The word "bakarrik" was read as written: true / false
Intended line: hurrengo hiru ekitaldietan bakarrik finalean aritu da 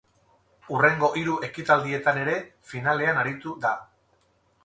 false